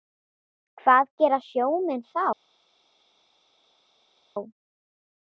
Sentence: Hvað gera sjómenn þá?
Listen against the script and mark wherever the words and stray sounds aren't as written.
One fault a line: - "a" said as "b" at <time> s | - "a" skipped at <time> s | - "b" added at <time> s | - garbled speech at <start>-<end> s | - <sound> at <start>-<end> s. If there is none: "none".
none